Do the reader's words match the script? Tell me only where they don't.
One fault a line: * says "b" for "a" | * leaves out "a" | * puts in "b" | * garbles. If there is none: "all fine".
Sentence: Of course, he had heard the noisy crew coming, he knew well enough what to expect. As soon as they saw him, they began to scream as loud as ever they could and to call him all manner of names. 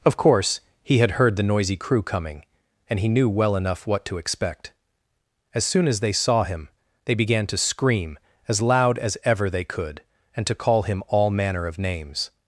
* puts in "and"